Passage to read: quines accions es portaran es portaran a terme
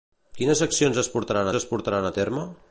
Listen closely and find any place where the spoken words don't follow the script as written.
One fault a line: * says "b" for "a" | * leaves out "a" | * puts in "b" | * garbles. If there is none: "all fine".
all fine